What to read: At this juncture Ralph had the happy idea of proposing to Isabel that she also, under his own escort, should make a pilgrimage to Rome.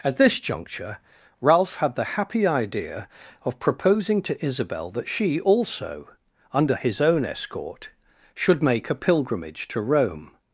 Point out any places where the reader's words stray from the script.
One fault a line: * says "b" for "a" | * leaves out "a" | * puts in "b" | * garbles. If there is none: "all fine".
all fine